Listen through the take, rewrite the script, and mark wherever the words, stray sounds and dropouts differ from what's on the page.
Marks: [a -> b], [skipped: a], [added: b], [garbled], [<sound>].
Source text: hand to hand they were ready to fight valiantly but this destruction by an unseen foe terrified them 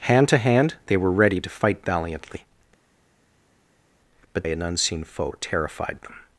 hand to hand they were ready to fight valiantly but [skipped: this destruction by] an unseen foe terrified them